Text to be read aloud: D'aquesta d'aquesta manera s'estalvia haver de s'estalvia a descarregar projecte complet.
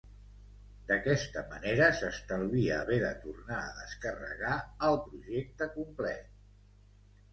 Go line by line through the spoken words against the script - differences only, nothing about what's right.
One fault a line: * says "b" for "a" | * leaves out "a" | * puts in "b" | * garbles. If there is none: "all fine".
* leaves out "d'aquesta"
* says "tornar" for "s'estalvia"
* puts in "el"